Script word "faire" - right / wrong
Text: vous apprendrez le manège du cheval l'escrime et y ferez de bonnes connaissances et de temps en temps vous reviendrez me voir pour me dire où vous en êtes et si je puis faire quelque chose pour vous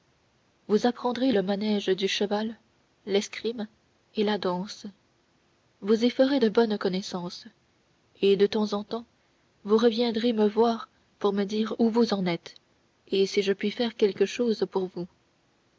right